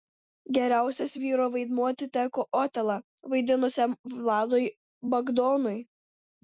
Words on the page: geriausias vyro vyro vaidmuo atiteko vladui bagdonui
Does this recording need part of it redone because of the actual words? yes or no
yes